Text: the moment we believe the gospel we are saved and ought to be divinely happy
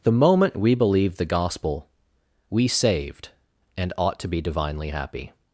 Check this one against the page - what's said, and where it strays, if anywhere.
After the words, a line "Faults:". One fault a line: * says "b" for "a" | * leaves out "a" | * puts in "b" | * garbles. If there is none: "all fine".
the moment we believe the gospel we saved and ought to be divinely happy
Faults:
* leaves out "are"